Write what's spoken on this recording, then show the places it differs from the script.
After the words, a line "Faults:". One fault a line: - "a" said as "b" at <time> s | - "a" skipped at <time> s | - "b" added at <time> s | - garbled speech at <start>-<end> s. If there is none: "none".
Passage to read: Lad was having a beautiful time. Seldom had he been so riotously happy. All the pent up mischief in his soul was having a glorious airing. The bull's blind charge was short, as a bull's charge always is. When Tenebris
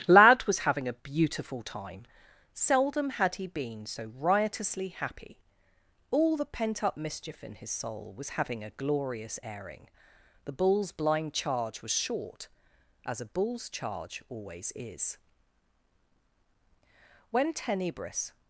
Lad was having a beautiful time. Seldom had he been so riotously happy. All the pent up mischief in his soul was having a glorious airing. The bull's blind charge was short, as a bull's charge always is. When Tenebris
Faults:
none